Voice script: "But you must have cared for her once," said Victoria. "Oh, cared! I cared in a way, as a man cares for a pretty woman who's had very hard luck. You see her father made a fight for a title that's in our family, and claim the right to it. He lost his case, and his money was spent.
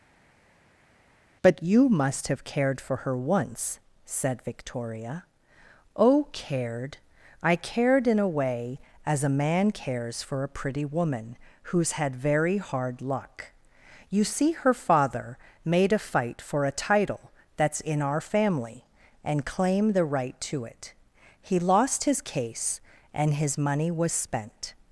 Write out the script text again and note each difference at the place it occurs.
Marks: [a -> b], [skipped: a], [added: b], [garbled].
"But you must have cared for her once," said Victoria. "Oh, cared! I cared in a way, as a man cares for a pretty woman who's had very hard luck. You see her father made a fight for a title that's in our family, and claim the right to it. He lost his case, and his money was spent.